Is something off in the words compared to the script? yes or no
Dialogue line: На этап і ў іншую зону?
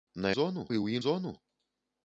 yes